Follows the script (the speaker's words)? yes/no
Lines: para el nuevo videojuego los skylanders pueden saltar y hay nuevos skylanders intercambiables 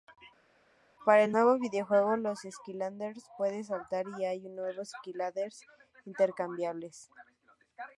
yes